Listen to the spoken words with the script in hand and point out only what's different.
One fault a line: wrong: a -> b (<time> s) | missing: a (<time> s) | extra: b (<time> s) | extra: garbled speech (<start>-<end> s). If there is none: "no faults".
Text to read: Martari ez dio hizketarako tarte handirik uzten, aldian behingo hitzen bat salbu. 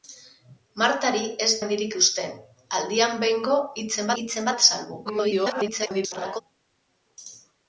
missing: dio hizketarako tarte (1.5 s)
extra: hitzen (4.2 s)
extra: garbled speech (5.0-6.4 s)